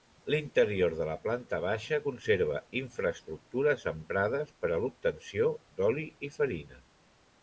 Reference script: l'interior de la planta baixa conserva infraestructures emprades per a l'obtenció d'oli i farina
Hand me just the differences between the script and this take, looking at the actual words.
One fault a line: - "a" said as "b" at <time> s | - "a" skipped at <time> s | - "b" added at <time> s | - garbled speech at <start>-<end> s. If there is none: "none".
none